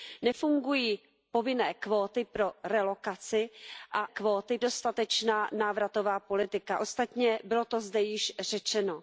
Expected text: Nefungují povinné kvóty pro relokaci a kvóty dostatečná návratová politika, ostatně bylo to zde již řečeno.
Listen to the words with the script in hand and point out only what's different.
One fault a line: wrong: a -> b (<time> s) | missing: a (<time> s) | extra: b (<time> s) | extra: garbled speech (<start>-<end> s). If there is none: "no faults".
no faults